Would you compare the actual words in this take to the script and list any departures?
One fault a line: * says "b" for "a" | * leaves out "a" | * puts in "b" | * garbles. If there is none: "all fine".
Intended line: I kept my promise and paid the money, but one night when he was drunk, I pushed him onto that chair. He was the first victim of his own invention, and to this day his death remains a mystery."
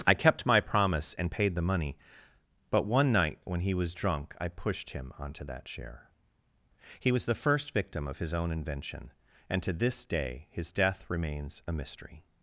all fine